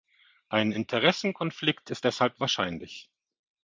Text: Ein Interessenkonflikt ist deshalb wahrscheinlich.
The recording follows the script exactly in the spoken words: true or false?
true